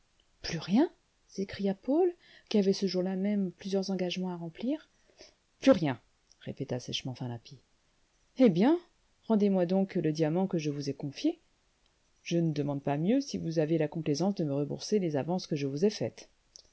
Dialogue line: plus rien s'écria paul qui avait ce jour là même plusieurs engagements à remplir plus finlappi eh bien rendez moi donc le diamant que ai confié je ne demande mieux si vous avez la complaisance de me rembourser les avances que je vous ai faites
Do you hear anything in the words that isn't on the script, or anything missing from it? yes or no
yes